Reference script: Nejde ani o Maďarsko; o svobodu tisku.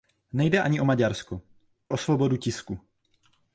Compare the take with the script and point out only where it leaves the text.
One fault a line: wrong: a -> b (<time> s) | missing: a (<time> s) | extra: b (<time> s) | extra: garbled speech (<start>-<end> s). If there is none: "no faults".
no faults